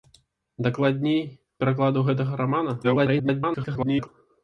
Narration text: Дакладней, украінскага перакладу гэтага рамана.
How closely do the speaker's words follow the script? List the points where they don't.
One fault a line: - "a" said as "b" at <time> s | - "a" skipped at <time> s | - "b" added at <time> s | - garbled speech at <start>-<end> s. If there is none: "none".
- "украінскага" skipped at 1.2 s
- garbled speech at 2.8-4.1 s